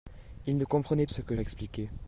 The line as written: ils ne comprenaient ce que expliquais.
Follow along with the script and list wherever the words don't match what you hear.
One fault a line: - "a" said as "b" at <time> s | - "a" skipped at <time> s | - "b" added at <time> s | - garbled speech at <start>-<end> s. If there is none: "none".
none